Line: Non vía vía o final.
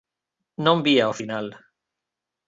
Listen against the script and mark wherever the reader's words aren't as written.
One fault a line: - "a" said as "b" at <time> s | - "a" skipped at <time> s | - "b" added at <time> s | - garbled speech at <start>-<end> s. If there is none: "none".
- "vía" skipped at 1.1 s